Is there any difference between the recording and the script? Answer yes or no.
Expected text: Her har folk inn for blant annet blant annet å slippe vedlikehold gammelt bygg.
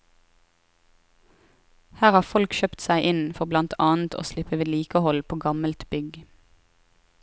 yes